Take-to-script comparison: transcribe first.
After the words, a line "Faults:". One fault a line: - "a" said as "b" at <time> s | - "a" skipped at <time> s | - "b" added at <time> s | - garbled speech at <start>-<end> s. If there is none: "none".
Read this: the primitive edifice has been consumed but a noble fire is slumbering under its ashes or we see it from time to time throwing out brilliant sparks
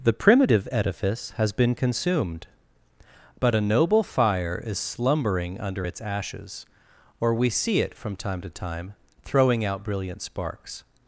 the primitive edifice has been consumed but a noble fire is slumbering under its ashes or we see it from time to time throwing out brilliant sparks
Faults:
none